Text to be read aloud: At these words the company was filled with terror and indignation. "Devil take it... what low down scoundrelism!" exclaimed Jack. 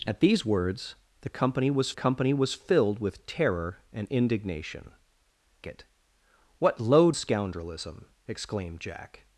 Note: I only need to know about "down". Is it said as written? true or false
false